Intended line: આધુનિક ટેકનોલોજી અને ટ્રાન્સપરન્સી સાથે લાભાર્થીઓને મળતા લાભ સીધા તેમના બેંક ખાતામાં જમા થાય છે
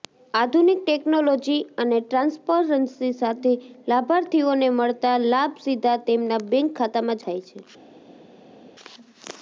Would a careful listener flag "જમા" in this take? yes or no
yes